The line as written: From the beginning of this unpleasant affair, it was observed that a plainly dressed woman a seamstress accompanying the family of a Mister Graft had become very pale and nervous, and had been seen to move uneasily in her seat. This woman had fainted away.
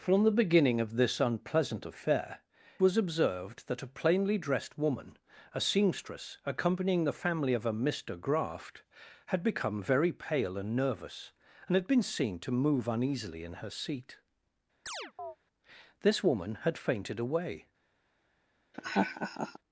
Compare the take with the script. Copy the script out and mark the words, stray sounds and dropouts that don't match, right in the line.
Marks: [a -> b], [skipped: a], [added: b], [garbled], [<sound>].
From the beginning of this unpleasant affair, [skipped: it] was observed that a plainly dressed woman a seamstress accompanying the family of a Mister Graft had become very pale and nervous, and had been seen to move uneasily in her seat. [chirp] This woman had fainted away. [laugh]